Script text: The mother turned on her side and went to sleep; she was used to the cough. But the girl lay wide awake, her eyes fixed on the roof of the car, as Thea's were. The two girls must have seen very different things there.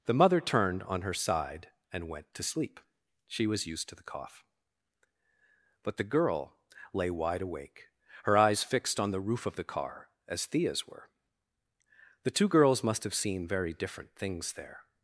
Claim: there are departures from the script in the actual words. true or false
false